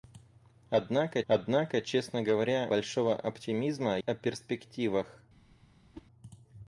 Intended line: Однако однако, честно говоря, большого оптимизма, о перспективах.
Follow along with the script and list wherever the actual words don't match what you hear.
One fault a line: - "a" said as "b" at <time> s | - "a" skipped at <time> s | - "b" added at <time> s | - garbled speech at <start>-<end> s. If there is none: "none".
none